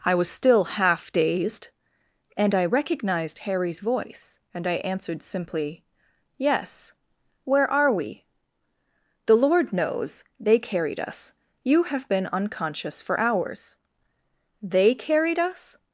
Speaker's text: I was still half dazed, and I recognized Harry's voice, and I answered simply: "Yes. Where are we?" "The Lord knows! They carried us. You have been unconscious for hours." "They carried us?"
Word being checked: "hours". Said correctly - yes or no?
yes